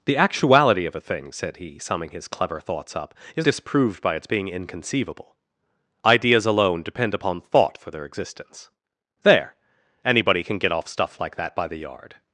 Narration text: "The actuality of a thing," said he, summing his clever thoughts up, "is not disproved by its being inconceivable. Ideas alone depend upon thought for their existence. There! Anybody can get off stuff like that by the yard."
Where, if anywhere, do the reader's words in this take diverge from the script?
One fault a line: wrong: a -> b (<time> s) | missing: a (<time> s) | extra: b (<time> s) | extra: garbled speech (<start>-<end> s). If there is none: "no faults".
missing: not (3.5 s)